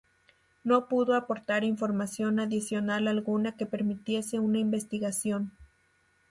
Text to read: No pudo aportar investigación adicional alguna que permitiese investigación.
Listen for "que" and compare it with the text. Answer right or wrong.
right